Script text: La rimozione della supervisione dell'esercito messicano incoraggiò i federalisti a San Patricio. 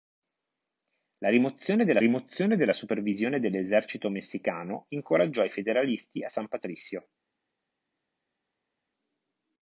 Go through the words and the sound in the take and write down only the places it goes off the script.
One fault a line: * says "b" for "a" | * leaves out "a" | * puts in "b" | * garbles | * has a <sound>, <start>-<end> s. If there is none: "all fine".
* puts in "rimozione della"